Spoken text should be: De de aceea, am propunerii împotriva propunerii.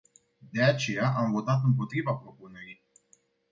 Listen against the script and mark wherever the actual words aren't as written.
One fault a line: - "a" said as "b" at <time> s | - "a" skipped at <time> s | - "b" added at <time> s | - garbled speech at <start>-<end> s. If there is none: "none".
- "de" skipped at 0.6 s
- "propunerii" said as "votat" at 1.3 s